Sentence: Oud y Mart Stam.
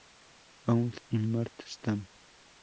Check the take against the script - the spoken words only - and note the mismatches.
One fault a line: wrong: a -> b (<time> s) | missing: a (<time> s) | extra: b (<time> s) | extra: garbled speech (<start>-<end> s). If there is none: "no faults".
no faults